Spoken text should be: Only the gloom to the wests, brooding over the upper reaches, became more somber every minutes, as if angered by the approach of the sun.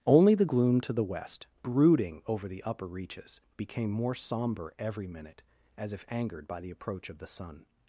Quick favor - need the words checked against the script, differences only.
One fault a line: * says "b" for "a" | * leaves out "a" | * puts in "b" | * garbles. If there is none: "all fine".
* says "west" for "wests"
* says "minute" for "minutes"